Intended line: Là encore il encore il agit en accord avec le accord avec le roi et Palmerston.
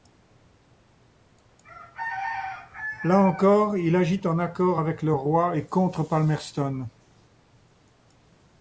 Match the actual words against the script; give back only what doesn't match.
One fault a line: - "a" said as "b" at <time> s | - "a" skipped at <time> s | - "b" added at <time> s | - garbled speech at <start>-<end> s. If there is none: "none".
- "encore il" skipped at 4.0 s
- "accord avec le" skipped at 5.1 s
- "contre" added at 5.6 s